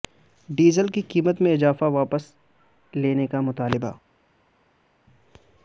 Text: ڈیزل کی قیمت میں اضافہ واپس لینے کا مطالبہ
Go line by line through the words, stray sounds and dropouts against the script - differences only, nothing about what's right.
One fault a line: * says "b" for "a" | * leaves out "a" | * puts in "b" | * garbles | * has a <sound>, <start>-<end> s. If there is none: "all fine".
all fine